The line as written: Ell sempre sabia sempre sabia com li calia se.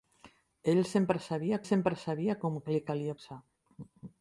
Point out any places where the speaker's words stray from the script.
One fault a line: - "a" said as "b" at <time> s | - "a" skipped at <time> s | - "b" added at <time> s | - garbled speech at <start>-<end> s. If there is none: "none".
none